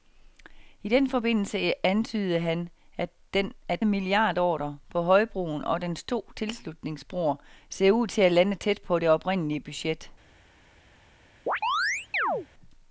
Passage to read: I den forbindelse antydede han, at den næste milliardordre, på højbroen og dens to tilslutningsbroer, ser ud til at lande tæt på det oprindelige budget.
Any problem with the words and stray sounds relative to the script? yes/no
yes